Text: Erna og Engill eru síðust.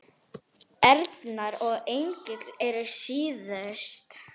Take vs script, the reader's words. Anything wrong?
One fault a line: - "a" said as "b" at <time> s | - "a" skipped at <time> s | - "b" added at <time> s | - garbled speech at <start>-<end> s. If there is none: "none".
none